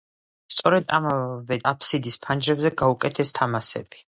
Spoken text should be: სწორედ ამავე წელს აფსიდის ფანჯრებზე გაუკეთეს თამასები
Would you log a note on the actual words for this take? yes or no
yes